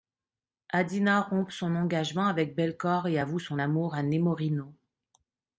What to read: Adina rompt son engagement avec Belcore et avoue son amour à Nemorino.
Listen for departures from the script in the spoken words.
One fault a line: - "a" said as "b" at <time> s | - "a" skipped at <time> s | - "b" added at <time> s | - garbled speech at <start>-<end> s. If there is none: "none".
none